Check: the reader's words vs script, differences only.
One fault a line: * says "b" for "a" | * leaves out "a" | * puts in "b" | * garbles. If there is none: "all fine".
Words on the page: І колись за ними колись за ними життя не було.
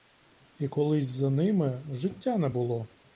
* leaves out "колись за ними"